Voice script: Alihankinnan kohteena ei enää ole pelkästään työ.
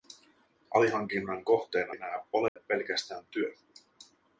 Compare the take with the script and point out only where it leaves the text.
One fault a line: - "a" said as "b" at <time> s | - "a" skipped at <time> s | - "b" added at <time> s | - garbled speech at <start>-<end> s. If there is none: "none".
- "ei" skipped at 1.9 s